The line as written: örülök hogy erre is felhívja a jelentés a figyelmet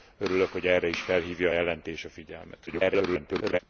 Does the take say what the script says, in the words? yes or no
no